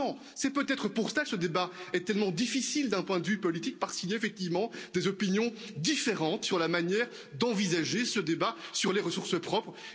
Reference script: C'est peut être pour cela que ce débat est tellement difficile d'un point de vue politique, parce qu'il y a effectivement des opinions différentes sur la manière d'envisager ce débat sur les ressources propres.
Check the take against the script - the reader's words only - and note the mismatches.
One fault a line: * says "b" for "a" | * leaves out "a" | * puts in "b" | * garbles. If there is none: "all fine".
all fine